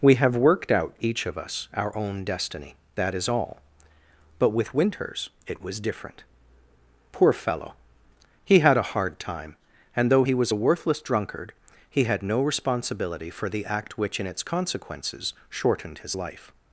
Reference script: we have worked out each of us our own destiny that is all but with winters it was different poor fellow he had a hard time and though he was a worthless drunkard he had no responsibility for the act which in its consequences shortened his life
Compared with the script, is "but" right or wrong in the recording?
right